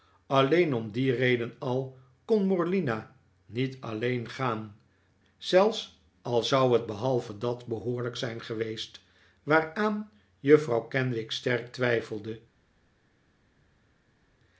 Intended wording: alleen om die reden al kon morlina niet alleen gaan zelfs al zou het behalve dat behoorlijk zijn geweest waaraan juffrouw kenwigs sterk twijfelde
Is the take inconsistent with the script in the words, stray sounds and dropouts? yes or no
no